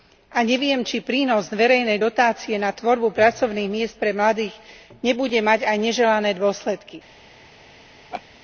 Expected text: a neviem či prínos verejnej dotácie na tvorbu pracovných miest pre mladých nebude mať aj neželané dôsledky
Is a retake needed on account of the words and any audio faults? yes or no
yes